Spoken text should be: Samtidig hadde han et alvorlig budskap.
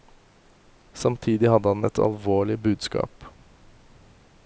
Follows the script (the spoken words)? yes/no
yes